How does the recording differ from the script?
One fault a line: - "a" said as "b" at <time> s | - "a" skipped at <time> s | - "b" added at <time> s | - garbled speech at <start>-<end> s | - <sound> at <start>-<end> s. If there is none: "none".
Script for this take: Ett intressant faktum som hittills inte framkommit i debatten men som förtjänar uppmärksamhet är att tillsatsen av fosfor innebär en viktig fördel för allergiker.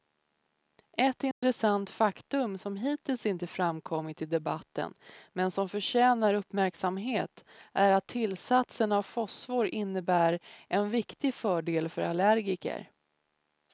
- dropout at 1.3-1.4 s